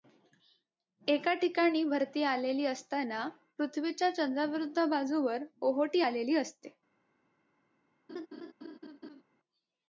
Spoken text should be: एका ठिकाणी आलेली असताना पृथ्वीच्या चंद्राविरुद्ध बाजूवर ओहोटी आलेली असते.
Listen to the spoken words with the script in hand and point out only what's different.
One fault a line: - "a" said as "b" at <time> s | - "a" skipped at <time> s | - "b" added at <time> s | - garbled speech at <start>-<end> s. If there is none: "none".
- "भरती" added at 1.8 s